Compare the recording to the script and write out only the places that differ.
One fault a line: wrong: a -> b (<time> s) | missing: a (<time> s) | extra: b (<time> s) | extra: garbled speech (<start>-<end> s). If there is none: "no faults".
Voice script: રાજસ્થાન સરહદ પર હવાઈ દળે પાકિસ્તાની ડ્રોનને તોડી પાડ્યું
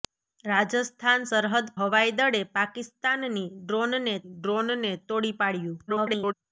missing: પર (1.7 s)
extra: ડ્રોનને (4.3 s)
extra: garbled speech (5.9-6.3 s)